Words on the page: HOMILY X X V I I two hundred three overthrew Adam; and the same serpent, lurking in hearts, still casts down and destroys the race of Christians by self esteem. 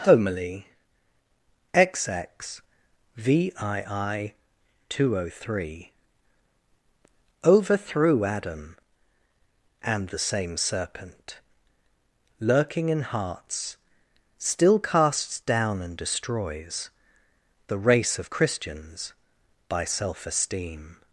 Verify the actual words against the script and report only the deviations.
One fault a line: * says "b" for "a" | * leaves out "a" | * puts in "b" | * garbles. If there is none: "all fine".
all fine